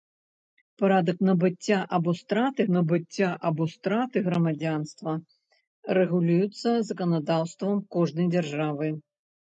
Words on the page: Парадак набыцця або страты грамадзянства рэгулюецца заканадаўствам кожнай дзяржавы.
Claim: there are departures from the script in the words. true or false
true